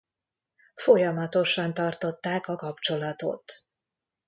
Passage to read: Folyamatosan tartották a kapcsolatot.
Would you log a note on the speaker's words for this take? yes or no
no